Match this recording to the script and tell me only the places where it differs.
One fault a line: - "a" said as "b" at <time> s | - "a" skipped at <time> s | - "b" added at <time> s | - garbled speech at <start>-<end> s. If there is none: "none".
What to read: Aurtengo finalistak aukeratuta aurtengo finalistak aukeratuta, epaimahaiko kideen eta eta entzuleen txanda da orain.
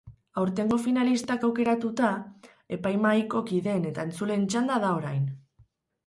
- "aurtengo finalistak aukeratuta" skipped at 2.1 s
- "eta" skipped at 4.0 s